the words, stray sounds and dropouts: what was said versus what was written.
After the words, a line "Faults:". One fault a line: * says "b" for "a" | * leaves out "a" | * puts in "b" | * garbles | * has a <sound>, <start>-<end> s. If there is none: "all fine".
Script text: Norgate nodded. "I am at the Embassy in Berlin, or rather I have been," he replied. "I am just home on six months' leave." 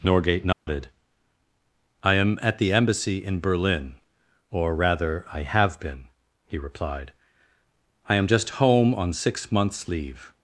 Norgate nodded. "I am at the Embassy in Berlin, or rather I have been," he replied. "I am just home on six months' leave."
Faults:
* has a dropout, 0.5-0.7 s